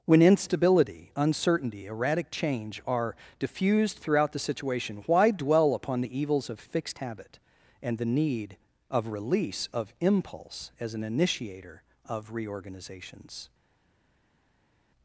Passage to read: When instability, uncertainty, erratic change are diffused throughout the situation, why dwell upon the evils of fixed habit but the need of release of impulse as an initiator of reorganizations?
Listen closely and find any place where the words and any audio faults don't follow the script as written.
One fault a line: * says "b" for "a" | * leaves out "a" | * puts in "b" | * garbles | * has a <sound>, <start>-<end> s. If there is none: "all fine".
* says "and" for "but"